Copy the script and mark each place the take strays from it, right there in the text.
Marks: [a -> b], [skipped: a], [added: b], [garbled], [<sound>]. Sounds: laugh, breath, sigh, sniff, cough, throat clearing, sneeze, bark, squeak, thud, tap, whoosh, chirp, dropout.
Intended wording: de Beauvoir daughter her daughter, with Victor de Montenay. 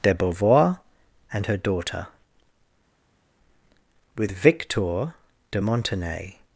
de Beauvoir [daughter -> and] her daughter, with Victor de Montenay.